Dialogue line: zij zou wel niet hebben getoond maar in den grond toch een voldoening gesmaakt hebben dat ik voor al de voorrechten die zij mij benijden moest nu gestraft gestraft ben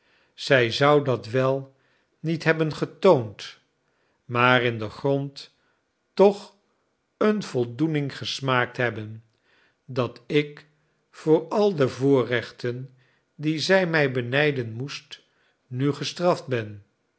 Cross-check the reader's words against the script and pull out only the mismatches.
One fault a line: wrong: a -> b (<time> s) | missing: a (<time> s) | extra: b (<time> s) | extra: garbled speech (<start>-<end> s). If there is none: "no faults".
extra: dat (1.0 s)
missing: gestraft (16.5 s)